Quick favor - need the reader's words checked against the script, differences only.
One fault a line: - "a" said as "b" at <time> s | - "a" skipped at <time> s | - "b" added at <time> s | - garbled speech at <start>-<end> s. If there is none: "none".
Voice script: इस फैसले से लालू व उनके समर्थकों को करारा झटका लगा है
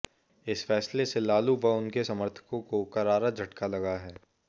none